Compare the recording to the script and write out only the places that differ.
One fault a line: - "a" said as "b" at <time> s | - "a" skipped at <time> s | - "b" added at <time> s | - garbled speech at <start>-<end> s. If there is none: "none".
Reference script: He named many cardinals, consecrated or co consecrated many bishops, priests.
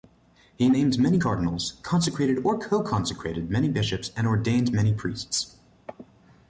- "and ordained many" added at 4.2 s